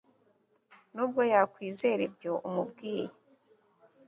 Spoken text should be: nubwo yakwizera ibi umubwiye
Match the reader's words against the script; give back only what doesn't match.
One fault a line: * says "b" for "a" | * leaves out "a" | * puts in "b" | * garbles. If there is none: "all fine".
* says "ibyo" for "ibi"